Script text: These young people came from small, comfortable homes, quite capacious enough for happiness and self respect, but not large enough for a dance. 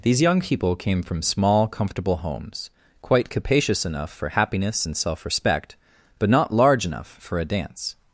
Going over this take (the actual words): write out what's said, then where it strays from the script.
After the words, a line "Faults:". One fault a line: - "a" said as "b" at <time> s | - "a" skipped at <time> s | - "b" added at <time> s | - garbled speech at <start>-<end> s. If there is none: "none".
These young people came from small, comfortable homes, quite capacious enough for happiness and self respect, but not large enough for a dance.
Faults:
none